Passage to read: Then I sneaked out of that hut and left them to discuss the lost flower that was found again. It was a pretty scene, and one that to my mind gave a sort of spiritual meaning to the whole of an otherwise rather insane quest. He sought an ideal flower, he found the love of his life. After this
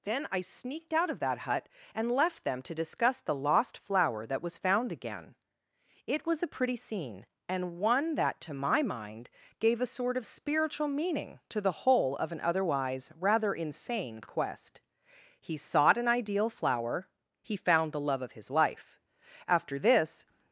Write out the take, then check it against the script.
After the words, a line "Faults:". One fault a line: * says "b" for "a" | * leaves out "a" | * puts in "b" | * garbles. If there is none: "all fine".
Then I sneaked out of that hut and left them to discuss the lost flower that was found again. It was a pretty scene, and one that to my mind gave a sort of spiritual meaning to the whole of an otherwise rather insane quest. He sought an ideal flower, he found the love of his life. After this
Faults:
all fine